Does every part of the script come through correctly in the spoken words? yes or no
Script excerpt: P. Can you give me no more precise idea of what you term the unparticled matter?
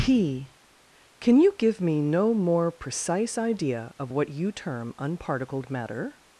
no